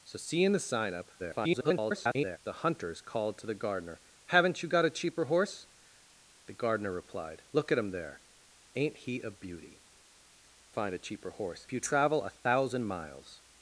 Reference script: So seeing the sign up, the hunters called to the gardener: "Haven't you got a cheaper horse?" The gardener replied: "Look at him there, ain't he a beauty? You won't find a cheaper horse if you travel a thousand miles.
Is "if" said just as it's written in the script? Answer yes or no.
no